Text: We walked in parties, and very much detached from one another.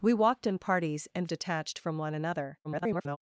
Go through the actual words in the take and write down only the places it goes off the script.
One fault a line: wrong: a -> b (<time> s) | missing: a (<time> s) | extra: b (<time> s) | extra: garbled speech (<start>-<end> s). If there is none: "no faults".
missing: very much (1.3 s)
extra: garbled speech (2.6-3.2 s)